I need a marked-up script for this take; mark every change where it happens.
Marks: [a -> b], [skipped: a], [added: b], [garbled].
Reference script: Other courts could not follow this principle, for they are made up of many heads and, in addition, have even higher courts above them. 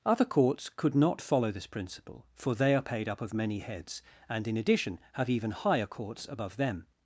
Other courts could not follow this principle, for they are [made -> paid] up of many heads and, in addition, have even higher courts above them.